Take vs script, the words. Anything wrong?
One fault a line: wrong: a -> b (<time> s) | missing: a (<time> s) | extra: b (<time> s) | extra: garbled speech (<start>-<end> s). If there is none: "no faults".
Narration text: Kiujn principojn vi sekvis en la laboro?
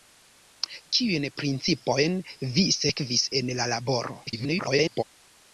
extra: garbled speech (4.3-5.0 s)